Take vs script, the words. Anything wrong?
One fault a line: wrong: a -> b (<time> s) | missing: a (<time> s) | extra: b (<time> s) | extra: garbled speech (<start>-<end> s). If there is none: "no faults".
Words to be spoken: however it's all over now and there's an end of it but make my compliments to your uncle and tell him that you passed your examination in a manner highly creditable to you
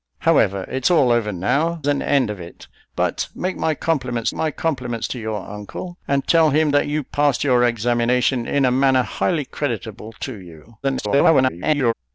missing: and there's (1.8 s)
extra: my compliments (4.3 s)
extra: garbled speech (10.8-11.9 s)